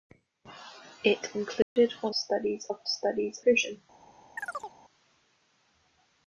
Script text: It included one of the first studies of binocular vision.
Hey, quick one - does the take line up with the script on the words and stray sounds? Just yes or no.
no